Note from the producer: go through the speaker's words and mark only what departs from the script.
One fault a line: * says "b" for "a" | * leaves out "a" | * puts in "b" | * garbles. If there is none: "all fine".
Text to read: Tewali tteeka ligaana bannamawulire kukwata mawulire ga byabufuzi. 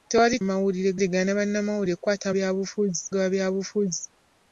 * says "mawulire" for "tteeka"
* says "byabufuzi" for "mawulire"